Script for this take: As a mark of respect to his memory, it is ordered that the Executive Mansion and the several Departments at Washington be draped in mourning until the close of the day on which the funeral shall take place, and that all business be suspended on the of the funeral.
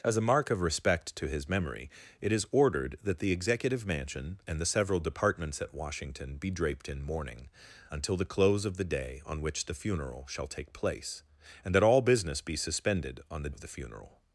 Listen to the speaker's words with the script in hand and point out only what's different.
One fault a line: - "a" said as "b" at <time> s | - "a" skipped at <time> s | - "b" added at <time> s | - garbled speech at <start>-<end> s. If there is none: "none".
none